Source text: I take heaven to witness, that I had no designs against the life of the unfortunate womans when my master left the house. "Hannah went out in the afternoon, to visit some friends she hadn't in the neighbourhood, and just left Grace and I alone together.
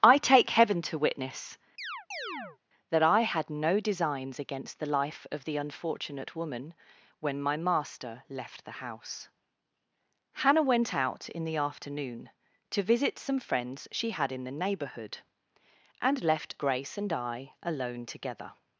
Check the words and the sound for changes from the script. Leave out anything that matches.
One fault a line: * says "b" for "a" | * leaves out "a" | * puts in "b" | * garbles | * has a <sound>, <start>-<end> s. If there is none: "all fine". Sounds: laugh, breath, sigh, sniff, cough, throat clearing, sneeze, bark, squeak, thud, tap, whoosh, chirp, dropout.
* has a chirp, 1.8-2.6 s
* says "woman" for "womans"
* says "had" for "hadn't"
* leaves out "just"